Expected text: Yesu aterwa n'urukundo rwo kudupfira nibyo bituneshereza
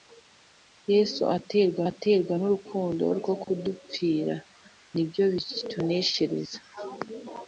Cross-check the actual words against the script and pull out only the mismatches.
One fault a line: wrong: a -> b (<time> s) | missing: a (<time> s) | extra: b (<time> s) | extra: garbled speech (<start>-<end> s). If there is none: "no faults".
extra: aterwa (1.9 s)